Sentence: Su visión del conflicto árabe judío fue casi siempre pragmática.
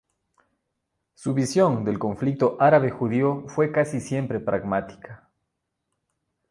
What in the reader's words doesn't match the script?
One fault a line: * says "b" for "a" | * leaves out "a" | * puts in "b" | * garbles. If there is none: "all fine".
all fine